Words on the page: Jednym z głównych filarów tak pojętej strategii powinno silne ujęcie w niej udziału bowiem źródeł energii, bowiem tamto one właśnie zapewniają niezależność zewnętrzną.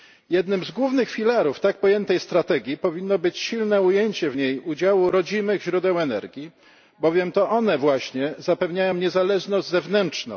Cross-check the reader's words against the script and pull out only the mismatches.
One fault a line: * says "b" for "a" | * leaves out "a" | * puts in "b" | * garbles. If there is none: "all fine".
* puts in "być"
* says "rodzimych" for "bowiem"
* says "to" for "tamto"